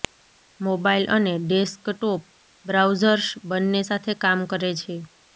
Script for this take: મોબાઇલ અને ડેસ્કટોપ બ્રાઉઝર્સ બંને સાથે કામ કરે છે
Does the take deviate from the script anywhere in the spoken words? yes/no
no